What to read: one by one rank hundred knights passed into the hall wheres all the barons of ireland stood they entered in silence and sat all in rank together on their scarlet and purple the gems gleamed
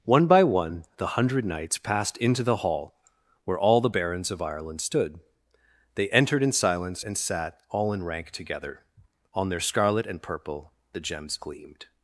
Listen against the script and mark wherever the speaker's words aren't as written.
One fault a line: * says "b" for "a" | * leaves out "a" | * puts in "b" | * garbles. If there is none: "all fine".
* says "the" for "rank"
* says "where" for "wheres"